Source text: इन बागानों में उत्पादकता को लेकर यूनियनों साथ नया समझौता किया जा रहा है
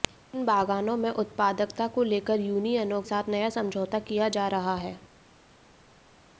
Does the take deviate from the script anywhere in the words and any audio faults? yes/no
no